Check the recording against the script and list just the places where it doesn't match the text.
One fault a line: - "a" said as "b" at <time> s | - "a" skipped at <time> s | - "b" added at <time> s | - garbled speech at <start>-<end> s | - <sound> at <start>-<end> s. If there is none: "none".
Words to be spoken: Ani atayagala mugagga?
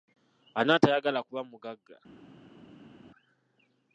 - "kuba" added at 1.3 s